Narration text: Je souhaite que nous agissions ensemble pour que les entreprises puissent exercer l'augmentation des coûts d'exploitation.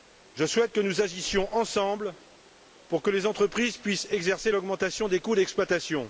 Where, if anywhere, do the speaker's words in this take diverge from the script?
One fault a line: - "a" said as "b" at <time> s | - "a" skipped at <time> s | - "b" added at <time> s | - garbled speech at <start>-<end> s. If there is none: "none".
none